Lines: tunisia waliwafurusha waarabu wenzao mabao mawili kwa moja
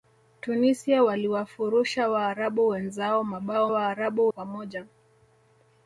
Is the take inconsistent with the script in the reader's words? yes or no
yes